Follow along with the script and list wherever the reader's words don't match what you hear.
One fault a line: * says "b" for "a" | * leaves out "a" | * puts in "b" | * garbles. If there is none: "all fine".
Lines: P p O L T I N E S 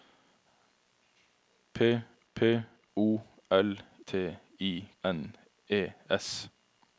all fine